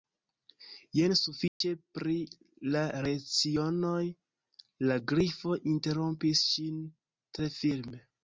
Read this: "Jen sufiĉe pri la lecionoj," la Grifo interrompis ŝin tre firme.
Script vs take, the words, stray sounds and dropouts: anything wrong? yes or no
yes